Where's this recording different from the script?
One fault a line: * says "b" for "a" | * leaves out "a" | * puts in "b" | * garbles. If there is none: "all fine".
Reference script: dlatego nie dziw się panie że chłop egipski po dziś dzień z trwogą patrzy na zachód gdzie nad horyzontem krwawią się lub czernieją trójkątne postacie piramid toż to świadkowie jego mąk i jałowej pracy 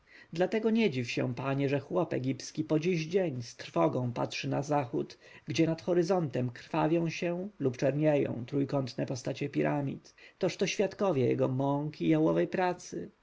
all fine